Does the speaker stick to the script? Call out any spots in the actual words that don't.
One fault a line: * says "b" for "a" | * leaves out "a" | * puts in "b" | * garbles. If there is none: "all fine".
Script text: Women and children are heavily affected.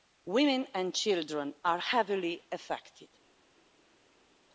all fine